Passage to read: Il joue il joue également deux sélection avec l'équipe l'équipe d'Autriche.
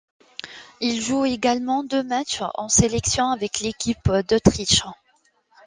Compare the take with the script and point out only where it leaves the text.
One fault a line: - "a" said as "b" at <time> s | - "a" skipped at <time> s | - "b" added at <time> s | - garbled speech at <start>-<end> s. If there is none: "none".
- "il joue également deux" said as "également deux matchs en" at 1.2 s
- "l'équipe" skipped at 4.1 s